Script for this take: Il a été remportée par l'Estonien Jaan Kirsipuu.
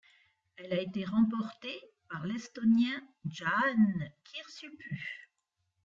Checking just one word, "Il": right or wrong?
wrong